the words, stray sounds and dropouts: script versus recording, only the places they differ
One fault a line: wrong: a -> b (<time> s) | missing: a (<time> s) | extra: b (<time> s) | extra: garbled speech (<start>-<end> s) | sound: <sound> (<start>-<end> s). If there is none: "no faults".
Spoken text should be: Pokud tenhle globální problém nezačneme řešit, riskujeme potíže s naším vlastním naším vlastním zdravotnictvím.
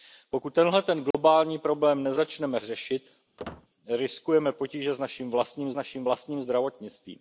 sound: dropout (1.1-1.1 s)
sound: squeak (3.4-3.7 s)